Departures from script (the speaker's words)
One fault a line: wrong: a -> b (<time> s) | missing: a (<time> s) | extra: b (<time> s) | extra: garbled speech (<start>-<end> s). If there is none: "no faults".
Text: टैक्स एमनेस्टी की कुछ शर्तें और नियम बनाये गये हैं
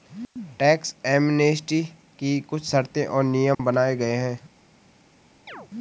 no faults